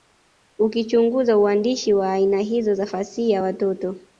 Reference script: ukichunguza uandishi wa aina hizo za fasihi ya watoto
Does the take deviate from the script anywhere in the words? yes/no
no